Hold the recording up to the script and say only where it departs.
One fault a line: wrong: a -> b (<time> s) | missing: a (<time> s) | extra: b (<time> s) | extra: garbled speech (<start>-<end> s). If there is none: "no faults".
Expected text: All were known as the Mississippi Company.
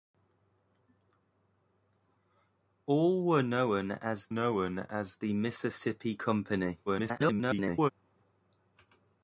extra: known as (4.3 s)
extra: garbled speech (6.9-7.9 s)